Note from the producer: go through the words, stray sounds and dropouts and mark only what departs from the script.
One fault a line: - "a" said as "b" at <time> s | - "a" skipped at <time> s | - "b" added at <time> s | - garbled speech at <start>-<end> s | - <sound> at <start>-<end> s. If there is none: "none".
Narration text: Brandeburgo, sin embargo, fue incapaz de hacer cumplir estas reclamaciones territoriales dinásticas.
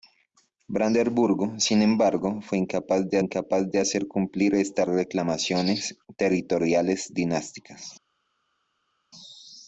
- "incapaz de" added at 3.2 s